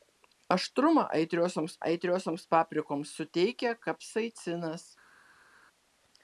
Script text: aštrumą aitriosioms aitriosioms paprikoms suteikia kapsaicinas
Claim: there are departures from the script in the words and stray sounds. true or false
false